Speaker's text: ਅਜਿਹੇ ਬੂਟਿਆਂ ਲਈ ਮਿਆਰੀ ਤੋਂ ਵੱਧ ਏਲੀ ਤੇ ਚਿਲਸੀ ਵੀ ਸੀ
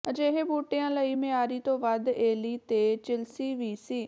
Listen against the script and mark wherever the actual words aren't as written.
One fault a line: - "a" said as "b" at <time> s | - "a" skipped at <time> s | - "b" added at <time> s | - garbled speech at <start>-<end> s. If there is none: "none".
none